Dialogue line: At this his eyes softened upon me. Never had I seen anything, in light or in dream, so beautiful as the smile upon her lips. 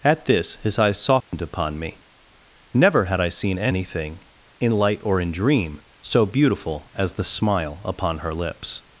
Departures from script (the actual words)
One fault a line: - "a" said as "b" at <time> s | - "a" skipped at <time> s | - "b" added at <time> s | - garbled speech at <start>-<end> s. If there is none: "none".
none